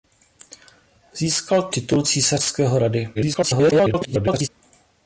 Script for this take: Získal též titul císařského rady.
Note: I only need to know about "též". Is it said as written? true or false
false